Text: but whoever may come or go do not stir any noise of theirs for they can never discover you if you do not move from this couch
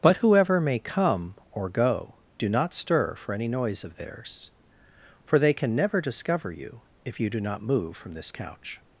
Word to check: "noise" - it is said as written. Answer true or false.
true